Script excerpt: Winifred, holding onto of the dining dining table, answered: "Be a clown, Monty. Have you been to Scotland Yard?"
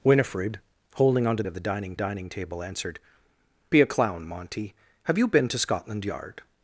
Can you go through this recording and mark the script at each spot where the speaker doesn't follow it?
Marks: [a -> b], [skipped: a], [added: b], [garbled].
Winifred, holding onto of the dining dining table, answered: "Be a clown, Monty. Have you been to Scotland Yard?"